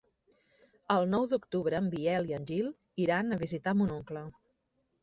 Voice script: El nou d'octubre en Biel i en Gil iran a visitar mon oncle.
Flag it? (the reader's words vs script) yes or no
no